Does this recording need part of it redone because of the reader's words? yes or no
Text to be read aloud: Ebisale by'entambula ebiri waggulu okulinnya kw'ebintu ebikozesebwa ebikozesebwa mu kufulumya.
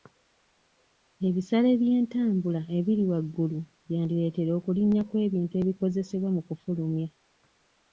yes